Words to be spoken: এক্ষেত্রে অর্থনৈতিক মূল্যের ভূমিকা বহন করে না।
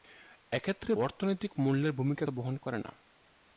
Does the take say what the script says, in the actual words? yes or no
yes